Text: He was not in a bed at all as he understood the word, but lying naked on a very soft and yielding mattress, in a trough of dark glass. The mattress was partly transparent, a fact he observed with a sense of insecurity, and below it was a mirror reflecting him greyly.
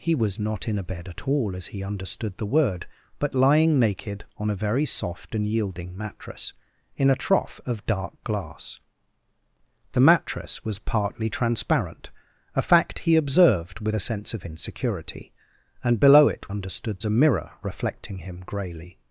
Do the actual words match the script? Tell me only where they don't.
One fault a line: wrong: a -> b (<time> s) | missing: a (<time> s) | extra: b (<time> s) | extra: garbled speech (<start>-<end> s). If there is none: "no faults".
wrong: was -> understood (16.5 s)